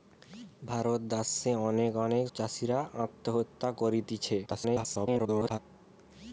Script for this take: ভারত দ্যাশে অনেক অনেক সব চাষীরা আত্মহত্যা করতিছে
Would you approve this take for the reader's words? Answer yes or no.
no